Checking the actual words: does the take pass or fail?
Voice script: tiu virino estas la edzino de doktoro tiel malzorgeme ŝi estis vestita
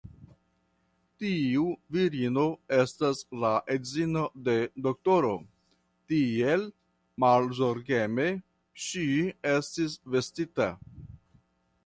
pass